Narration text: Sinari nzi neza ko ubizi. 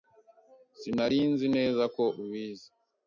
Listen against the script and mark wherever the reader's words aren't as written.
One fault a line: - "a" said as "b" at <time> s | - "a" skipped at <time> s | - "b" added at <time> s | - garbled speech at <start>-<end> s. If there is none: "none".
none